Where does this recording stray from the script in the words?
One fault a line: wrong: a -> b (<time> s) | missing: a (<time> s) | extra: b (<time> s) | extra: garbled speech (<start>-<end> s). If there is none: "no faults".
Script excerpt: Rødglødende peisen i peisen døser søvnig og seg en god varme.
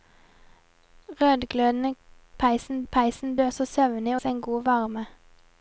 no faults